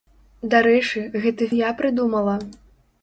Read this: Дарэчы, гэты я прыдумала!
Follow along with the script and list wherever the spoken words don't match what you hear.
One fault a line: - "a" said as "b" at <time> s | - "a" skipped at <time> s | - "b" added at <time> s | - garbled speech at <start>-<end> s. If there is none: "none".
none